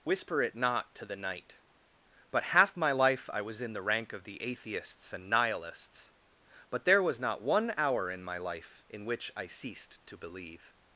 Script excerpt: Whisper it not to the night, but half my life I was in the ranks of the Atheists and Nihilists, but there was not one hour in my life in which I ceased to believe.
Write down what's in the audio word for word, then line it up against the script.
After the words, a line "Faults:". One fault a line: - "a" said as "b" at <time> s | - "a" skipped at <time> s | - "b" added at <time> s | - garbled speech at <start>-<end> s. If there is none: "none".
Whisper it not to the night, but half my life I was in the rank of the Atheists and Nihilists, but there was not one hour in my life in which I ceased to believe.
Faults:
- "ranks" said as "rank" at 3.8 s